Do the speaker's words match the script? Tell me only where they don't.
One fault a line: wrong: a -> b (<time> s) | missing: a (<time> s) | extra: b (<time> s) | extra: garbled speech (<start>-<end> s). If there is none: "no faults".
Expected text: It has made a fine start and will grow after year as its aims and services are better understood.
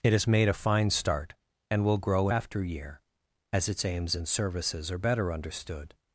no faults